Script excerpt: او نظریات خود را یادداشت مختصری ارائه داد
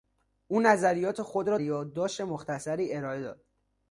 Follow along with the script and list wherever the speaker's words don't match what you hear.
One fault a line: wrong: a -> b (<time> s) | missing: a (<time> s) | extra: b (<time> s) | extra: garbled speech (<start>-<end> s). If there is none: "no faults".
no faults